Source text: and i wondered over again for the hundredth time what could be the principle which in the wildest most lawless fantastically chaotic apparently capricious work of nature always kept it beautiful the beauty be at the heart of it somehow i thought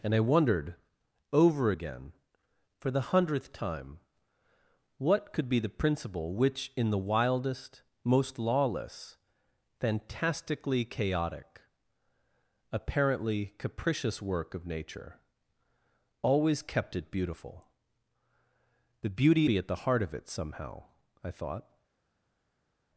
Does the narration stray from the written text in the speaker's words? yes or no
no